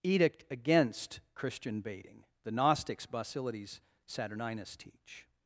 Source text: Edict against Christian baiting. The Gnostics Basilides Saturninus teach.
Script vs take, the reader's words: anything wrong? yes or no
no